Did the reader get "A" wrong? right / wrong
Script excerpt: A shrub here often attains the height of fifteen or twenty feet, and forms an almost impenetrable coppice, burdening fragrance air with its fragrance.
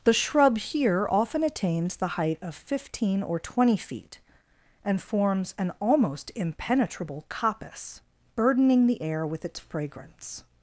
wrong